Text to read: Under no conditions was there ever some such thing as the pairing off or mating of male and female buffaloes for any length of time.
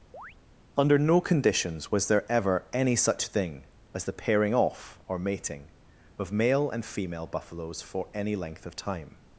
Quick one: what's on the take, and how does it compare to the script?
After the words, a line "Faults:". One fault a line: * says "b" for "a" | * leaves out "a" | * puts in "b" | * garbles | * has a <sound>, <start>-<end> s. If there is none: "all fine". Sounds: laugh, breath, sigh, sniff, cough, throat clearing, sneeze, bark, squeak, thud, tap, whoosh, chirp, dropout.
Under no conditions was there ever any such thing as the pairing off or mating of male and female buffaloes for any length of time.
Faults:
* has a chirp, 0.1-0.4 s
* says "any" for "some"